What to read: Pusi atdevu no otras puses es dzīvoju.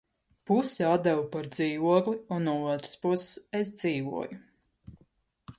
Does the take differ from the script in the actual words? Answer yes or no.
yes